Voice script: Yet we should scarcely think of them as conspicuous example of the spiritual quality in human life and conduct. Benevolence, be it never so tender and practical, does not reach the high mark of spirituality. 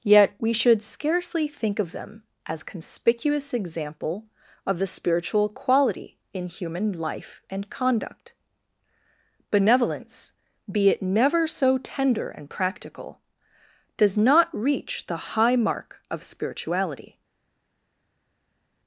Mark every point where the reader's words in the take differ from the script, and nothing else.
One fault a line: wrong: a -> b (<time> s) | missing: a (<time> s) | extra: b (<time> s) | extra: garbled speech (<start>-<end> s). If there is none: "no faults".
no faults